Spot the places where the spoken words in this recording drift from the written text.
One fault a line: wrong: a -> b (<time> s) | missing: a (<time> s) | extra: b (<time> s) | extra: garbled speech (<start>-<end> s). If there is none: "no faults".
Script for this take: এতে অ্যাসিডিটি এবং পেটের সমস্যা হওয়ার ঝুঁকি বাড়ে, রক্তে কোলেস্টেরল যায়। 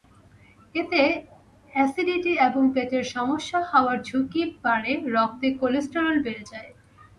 extra: বেড়ে (6.2 s)